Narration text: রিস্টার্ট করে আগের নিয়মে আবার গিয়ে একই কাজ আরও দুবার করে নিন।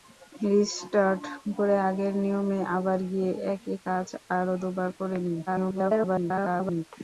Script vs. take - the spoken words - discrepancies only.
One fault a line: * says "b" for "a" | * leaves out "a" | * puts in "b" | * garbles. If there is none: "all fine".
* garbles